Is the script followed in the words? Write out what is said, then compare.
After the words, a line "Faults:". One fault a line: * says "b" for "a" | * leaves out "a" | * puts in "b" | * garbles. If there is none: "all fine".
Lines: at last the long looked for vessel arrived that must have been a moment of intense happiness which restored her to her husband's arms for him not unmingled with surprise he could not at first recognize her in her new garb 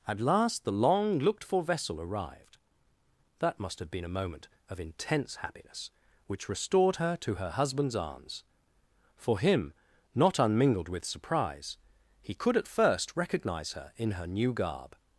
at last the long looked for vessel arrived that must have been a moment of intense happiness which restored her to her husband's arms for him not unmingled with surprise he could at first recognize her in her new garb
Faults:
* leaves out "not"